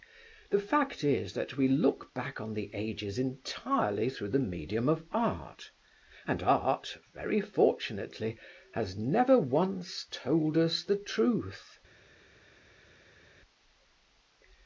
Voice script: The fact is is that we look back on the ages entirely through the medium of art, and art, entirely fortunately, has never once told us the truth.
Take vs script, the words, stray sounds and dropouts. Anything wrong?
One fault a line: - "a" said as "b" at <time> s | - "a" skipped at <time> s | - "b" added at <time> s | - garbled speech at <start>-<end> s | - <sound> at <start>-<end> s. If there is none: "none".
- "is" skipped at 1.3 s
- "entirely" said as "very" at 7.1 s